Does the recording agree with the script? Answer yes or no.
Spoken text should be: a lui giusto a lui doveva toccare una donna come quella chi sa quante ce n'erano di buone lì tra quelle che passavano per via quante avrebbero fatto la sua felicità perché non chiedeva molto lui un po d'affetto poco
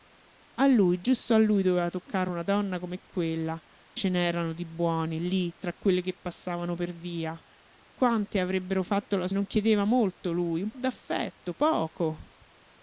no